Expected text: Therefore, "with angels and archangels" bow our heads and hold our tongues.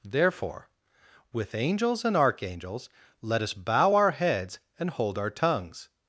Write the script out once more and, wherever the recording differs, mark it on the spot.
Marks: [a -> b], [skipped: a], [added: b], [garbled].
Therefore, "with angels and archangels" [added: let us] bow our heads and hold our tongues.